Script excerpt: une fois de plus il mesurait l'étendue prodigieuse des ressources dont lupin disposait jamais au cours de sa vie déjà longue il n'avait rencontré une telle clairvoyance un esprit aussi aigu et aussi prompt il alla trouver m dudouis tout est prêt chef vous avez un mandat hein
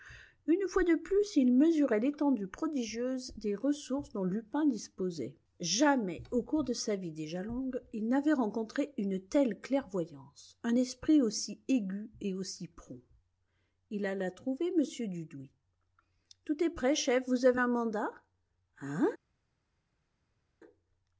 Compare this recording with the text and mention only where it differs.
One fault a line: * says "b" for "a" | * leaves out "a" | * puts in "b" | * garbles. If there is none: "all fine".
all fine